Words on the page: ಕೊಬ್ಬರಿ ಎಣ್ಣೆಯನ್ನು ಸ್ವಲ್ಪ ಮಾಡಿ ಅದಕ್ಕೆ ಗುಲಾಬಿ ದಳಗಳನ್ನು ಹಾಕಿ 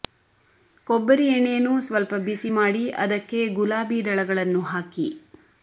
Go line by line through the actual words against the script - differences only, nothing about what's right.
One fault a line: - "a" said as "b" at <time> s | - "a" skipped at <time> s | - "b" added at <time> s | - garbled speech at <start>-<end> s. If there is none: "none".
- "ಬಿಸಿ" added at 2.2 s